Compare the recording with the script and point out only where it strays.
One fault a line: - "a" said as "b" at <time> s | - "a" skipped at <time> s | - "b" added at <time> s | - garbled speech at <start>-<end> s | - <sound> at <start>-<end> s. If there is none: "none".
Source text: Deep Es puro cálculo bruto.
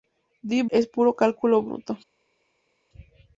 none